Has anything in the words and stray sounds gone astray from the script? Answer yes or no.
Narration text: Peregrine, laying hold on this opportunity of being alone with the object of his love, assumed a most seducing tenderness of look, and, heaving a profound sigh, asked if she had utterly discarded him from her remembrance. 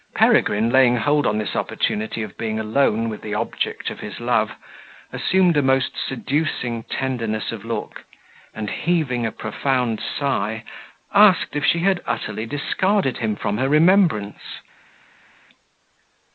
no